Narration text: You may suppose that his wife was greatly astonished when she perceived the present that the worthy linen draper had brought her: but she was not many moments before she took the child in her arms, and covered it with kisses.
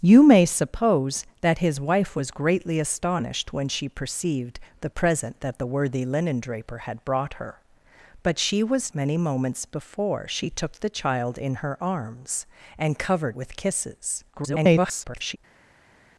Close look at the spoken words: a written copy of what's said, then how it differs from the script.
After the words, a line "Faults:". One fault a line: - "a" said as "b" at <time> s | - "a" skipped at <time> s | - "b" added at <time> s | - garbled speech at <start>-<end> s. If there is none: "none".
You may suppose that his wife was greatly astonished when she perceived the present that the worthy linen draper had brought her: but she was many moments before she took the child in her arms, and covered with kisses. [garbled]
Faults:
- "not" skipped at 8.9 s
- "it" skipped at 13.4 s
- garbled speech at 14.3-15.4 s